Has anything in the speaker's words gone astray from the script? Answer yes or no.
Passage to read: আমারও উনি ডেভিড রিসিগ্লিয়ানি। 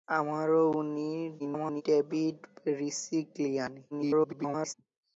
yes